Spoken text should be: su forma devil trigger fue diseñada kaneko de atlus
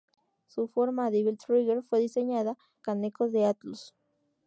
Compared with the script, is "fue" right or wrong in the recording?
right